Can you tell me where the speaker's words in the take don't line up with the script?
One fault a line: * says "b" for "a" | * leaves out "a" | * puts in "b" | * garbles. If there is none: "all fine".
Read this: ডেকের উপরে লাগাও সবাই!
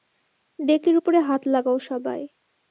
* puts in "হাত"